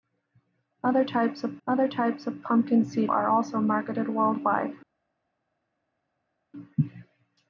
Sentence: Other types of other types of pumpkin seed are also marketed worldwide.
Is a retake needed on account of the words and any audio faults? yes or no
no